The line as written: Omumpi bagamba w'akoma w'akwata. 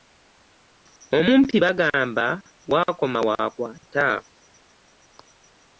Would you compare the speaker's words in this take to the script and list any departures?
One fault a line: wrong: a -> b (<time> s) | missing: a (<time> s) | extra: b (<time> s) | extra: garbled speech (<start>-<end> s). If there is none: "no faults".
no faults